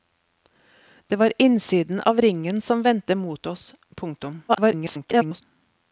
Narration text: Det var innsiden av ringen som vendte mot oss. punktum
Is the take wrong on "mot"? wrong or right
right